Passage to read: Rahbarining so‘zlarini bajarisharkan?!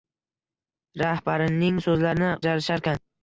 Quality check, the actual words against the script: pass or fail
pass